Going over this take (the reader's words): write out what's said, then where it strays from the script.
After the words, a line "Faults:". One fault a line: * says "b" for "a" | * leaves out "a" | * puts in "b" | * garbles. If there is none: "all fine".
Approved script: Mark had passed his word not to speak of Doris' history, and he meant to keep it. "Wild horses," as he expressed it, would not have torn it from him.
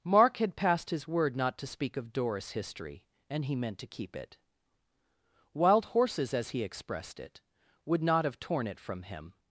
Mark had passed his word not to speak of Doris' history, and he meant to keep it. "Wild horses," as he expressed it, would not have torn it from him.
Faults:
all fine